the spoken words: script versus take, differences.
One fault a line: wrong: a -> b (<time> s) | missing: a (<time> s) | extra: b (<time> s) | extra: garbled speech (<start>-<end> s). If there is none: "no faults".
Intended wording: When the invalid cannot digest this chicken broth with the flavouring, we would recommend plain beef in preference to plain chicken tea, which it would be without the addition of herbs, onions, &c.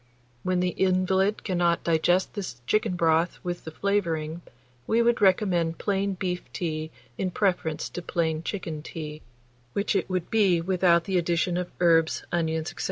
extra: tea (6.5 s)